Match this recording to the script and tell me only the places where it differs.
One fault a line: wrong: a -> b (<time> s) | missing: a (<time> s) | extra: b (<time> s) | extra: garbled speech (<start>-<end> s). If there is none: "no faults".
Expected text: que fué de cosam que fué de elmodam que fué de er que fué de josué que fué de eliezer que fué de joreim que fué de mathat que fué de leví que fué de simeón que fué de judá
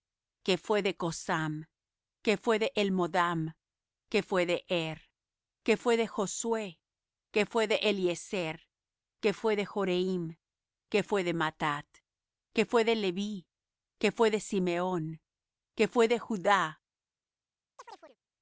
no faults